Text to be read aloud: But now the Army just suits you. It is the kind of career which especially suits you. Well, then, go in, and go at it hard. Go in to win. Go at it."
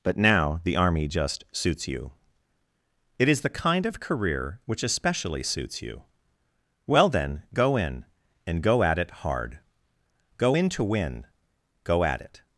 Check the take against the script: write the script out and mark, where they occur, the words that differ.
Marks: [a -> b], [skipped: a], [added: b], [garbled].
But now the Army just suits you. It is the kind of career which especially suits you. Well, then, go in, and go at it hard. Go in to win. Go at it."